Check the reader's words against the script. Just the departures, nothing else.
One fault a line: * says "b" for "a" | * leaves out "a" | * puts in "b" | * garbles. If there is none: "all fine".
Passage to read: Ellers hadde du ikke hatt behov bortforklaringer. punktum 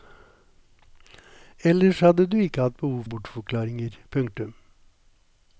all fine